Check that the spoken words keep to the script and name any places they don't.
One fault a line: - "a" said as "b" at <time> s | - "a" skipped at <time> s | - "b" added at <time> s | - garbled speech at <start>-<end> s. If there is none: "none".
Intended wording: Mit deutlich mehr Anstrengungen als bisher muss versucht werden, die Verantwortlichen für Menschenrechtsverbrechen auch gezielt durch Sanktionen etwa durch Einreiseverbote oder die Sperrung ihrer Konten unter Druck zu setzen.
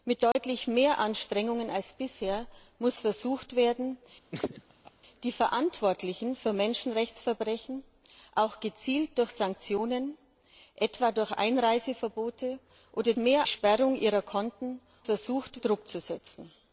- "die" said as "mehr" at 13.1 s
- "unter" said as "versucht" at 15.0 s